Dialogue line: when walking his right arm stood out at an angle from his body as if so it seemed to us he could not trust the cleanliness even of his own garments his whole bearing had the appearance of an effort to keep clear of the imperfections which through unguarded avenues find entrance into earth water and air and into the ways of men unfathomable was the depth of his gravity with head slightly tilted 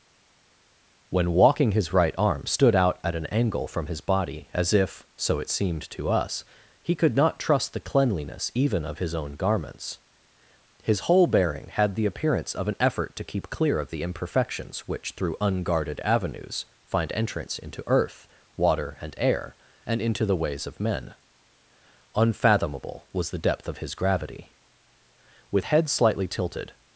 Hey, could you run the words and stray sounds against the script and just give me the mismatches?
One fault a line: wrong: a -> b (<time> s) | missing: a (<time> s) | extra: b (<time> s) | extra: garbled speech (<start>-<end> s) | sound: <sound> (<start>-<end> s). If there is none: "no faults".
no faults